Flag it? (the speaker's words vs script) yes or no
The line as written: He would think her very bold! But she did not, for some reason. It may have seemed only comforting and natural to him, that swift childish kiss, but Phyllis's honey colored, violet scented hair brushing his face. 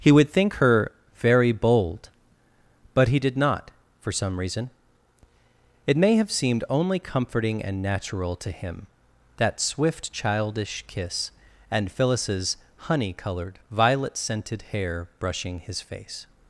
yes